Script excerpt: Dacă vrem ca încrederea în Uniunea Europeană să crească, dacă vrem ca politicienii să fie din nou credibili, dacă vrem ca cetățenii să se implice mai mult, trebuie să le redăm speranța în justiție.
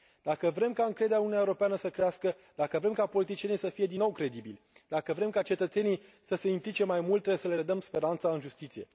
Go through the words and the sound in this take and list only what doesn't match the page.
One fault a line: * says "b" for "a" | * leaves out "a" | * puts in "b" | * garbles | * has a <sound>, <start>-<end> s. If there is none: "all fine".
all fine